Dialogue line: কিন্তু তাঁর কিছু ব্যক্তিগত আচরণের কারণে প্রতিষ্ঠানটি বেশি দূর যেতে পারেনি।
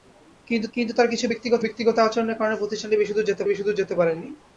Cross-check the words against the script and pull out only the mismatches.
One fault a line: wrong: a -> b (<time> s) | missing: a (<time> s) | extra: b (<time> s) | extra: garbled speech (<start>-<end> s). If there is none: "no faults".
extra: কিন্তু (0.7 s)
extra: ব্যক্তিগত (1.6 s)
extra: বেশি দূর যেতে (3.5 s)